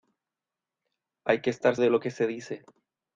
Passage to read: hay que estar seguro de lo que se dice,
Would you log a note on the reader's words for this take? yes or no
yes